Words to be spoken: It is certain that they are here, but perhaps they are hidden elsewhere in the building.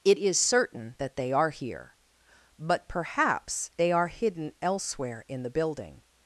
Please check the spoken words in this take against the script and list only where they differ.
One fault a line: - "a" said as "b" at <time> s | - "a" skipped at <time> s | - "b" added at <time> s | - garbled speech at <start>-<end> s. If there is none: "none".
none